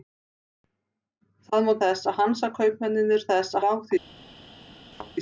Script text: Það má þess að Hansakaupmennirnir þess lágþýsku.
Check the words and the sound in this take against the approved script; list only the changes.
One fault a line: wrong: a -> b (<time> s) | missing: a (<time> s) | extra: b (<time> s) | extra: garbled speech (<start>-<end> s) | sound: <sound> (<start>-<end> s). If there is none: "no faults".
sound: thud (4.9-5.1 s)